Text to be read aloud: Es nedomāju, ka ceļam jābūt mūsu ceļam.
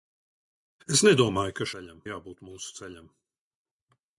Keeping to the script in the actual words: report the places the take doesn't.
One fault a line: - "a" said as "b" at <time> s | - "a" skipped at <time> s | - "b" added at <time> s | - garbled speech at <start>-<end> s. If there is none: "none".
none